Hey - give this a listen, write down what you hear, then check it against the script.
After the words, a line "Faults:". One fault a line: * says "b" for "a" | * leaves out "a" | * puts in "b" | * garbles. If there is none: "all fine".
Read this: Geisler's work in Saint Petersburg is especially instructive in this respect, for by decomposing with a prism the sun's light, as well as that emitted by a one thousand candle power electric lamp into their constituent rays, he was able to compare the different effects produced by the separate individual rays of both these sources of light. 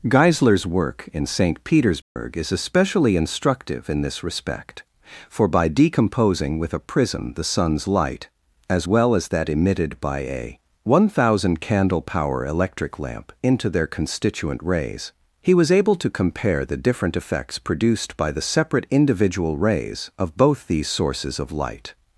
Geisler's work in Saint Petersburg is especially instructive in this respect, for by decomposing with a prism the sun's light, as well as that emitted by a one thousand candle power electric lamp into their constituent rays, he was able to compare the different effects produced by the separate individual rays of both these sources of light.
Faults:
all fine